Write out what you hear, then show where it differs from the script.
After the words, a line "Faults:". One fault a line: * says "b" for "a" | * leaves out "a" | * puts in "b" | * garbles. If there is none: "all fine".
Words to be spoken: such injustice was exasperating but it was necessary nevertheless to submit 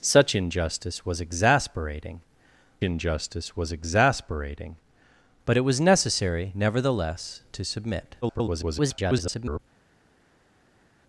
such injustice was exasperating injustice was exasperating but it was necessary nevertheless to submit [garbled]
Faults:
* puts in "injustice was exasperating"
* garbles